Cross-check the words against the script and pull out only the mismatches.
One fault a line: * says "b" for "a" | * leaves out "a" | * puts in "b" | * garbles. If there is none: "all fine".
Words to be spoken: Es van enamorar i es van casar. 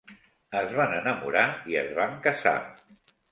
all fine